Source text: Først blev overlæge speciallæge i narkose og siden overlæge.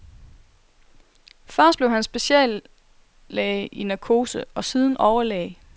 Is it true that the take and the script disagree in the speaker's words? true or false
true